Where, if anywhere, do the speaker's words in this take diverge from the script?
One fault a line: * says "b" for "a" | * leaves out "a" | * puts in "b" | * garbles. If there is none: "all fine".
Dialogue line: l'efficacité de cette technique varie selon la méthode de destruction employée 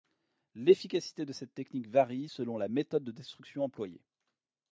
all fine